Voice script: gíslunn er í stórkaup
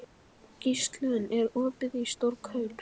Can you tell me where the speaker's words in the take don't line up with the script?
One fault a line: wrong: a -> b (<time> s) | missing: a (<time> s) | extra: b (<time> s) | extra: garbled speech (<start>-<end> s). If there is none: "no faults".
extra: opið (1.6 s)